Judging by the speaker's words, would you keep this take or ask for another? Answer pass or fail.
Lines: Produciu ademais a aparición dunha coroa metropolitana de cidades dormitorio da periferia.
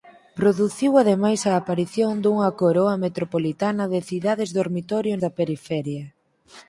pass